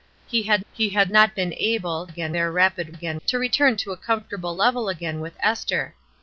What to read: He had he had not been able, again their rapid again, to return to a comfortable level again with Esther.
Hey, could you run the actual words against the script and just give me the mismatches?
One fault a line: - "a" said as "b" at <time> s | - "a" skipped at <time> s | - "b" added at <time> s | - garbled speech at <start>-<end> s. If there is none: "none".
none